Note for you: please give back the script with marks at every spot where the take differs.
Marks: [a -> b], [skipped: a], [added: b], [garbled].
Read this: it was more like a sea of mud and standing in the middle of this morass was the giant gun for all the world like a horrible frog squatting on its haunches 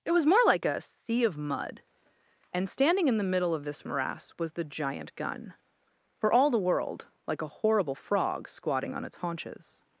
it was more like a sea of mud and standing in the middle of this morass was the giant gun for all the world like a horrible frog squatting on its haunches